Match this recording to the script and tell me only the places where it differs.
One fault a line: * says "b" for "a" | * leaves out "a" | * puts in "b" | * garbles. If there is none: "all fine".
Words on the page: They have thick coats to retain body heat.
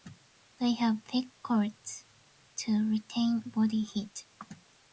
all fine